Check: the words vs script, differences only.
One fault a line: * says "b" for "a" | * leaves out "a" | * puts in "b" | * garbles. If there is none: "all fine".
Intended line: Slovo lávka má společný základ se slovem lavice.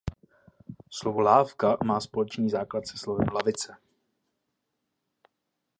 all fine